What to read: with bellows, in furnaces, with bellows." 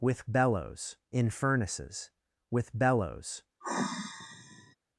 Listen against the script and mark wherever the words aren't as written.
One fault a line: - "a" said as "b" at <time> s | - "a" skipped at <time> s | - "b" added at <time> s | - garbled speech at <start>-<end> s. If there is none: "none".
none